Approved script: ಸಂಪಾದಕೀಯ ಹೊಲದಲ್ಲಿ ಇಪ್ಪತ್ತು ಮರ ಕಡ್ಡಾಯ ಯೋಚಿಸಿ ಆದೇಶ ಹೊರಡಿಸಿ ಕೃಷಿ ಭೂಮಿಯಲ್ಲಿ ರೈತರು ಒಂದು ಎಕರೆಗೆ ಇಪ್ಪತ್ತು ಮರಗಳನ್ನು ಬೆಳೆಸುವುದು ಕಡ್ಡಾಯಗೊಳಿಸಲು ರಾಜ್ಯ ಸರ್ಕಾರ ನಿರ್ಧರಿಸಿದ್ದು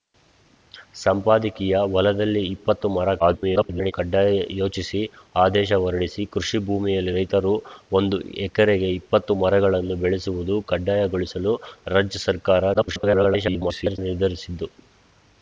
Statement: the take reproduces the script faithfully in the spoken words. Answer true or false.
false